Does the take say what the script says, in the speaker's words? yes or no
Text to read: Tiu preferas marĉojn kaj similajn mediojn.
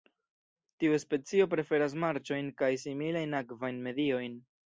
no